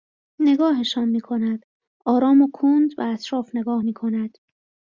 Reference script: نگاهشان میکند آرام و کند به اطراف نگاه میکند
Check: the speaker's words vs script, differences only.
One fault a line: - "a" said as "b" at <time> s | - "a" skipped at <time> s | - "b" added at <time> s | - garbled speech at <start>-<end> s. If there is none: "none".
none